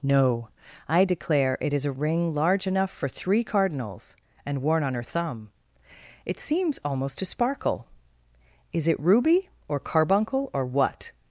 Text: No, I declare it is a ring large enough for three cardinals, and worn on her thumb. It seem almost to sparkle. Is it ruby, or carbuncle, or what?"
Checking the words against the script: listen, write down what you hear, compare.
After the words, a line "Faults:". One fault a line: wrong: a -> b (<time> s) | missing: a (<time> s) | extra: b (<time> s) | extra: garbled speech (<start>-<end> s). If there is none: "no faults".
No, I declare it is a ring large enough for three cardinals, and worn on her thumb. It seems almost to sparkle. Is it ruby, or carbuncle, or what?"
Faults:
wrong: seem -> seems (6.4 s)